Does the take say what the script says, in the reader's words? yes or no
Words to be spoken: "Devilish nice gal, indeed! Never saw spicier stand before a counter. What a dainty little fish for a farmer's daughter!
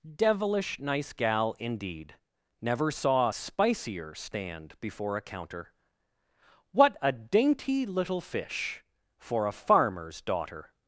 no